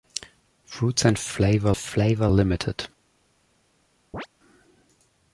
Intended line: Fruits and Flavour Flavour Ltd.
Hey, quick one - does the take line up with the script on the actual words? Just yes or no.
yes